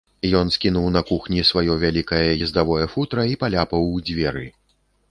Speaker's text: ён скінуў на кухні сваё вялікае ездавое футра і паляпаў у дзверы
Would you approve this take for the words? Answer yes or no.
yes